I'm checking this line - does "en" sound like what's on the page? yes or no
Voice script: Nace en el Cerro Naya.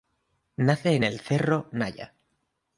yes